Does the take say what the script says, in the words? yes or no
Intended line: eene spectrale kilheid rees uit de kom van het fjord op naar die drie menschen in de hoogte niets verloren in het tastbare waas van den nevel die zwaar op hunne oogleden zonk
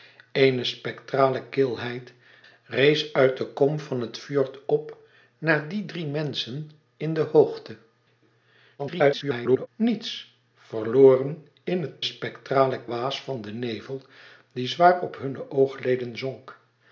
no